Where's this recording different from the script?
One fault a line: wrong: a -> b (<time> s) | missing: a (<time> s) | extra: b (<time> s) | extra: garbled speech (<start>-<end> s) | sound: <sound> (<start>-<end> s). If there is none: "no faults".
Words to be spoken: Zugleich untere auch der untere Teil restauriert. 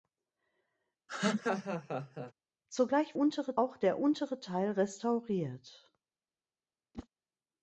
sound: laugh (1.1-2.3 s)
sound: whoosh (6.9-7.1 s)